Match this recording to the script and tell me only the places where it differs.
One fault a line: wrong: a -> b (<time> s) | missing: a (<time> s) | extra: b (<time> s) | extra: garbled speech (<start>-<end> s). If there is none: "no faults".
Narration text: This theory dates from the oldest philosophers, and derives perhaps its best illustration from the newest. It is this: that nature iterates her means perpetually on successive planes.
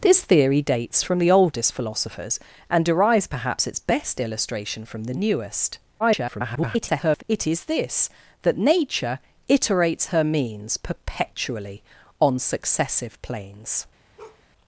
extra: garbled speech (6.0-7.2 s)